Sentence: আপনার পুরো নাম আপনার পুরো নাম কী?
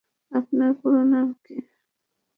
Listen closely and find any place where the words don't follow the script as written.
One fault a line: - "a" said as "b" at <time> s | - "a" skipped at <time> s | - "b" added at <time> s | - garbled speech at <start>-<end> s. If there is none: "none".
- "আপনার পুরো নাম" skipped at 1.3 s